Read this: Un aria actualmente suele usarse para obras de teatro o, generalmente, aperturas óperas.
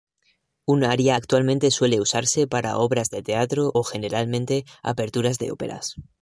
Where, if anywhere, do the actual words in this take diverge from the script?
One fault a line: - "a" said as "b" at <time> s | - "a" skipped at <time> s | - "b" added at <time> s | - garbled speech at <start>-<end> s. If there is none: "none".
- "de" added at 5.4 s